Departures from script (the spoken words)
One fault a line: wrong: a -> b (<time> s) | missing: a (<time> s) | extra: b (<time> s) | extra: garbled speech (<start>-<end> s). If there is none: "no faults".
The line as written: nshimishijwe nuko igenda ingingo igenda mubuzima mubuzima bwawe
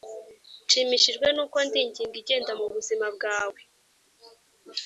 wrong: igenda -> ndi (1.7 s)
missing: mubuzima (3.1 s)